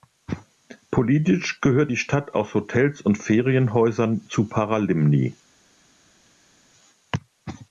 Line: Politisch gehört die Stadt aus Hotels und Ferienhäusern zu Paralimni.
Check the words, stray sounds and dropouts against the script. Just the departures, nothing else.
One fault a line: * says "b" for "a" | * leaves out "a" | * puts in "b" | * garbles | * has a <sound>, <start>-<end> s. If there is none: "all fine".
all fine